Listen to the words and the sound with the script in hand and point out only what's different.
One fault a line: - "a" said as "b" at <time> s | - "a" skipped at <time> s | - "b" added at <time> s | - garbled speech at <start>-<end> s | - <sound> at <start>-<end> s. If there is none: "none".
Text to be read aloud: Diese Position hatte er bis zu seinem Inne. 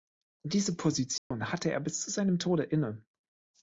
- dropout at 1.2-1.3 s
- "Tode" added at 2.4 s